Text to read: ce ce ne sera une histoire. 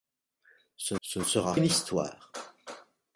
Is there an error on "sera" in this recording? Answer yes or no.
no